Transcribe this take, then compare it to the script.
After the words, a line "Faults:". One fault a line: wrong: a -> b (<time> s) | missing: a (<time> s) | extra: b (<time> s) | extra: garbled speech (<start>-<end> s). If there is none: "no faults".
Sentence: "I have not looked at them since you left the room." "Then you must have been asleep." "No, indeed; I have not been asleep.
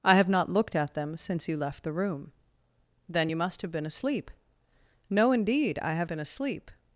"I have not looked at them since you left the room." "Then you must have been asleep." "No, indeed; I have been asleep.
Faults:
missing: not (6.1 s)